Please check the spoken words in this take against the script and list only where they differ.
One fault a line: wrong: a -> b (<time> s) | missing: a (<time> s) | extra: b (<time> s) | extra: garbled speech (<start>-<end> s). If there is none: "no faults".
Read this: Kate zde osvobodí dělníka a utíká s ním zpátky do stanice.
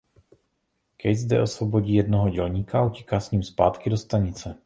extra: jednoho (1.9 s)